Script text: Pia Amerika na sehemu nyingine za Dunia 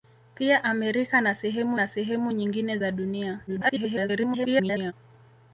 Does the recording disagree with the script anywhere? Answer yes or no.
yes